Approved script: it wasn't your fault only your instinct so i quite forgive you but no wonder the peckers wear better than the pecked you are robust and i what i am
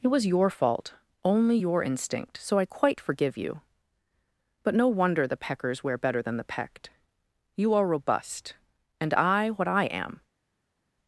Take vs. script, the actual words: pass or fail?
fail